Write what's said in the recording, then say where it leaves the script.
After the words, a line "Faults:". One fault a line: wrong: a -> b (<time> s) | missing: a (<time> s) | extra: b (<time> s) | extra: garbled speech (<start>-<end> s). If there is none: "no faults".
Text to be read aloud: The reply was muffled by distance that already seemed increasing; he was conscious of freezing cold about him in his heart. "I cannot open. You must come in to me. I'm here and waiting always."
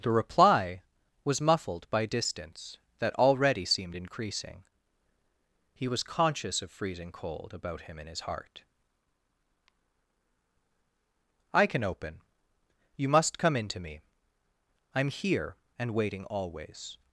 The reply was muffled by distance that already seemed increasing; he was conscious of freezing cold about him in his heart. "I can open. You must come in to me. I'm here and waiting always."
Faults:
wrong: cannot -> can (11.7 s)